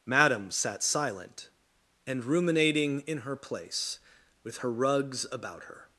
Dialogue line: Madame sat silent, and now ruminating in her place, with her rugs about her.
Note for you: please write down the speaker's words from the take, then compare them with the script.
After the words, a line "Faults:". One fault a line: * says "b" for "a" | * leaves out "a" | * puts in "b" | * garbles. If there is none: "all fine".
Madame sat silent, and ruminating in her place, with her rugs about her.
Faults:
* leaves out "now"